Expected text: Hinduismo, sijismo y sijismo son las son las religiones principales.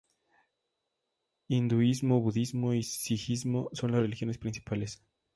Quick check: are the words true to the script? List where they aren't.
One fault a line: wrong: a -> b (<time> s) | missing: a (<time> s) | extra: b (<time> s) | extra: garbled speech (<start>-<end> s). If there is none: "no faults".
wrong: sijismo -> budismo (2.2 s)
missing: son las (4.0 s)